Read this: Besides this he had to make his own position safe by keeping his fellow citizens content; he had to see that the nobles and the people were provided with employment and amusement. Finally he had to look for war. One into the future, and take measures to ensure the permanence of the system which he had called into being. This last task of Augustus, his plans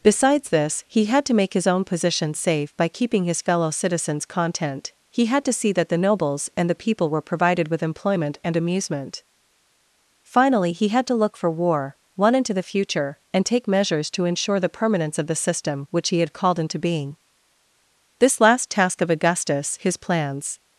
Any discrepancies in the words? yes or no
no